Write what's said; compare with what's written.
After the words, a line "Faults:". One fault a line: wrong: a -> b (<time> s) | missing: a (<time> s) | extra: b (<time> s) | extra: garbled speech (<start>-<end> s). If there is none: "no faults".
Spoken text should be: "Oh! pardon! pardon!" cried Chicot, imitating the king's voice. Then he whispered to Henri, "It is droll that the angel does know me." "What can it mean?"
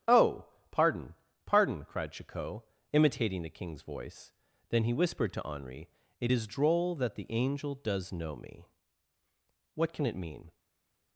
"Oh! pardon! pardon!" cried Chicot, imitating the king's voice. Then he whispered to Henri, "It is droll that the angel does know me." "What can it mean?"
Faults:
no faults